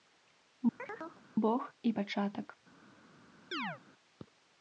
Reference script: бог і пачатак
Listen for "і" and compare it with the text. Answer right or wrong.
right